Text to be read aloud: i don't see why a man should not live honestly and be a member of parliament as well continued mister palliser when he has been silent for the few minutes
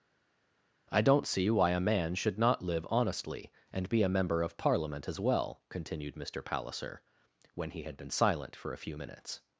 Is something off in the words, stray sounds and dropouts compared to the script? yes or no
yes